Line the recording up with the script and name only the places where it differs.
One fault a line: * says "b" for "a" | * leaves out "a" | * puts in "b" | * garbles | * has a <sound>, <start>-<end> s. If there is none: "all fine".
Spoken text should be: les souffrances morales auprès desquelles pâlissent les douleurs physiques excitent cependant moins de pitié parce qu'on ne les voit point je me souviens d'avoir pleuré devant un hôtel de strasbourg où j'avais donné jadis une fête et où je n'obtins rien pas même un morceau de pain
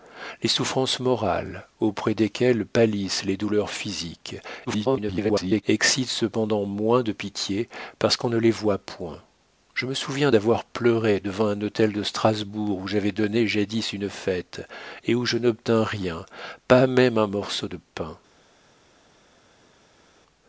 * garbles